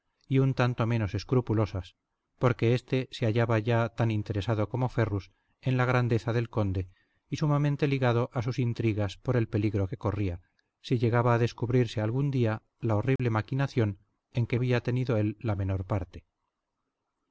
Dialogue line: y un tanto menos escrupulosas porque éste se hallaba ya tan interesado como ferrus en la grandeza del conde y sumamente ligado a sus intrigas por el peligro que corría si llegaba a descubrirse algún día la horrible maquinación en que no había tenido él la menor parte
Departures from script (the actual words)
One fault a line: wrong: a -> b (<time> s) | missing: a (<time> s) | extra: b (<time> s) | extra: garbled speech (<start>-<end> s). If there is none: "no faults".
missing: no (14.6 s)